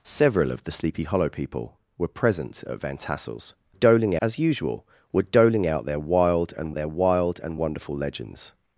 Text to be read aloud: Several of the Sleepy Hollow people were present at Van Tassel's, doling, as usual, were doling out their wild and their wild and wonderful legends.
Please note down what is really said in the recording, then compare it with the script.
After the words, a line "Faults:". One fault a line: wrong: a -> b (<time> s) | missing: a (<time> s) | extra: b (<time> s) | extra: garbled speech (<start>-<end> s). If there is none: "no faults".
Several of the Sleepy Hollow people were present at Van Tassel's, doling, as usual, were doling out their wild and their wild and wonderful legends.
Faults:
no faults